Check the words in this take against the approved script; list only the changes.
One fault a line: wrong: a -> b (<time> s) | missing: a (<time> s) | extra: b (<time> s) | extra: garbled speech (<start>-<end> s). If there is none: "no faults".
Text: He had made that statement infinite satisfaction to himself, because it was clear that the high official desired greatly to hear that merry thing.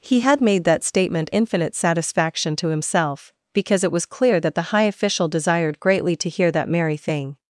no faults